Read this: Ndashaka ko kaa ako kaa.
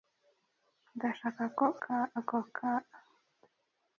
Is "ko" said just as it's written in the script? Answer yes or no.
yes